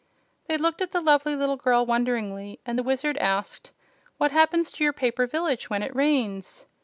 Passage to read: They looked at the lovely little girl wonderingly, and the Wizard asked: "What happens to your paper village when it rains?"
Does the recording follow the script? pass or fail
pass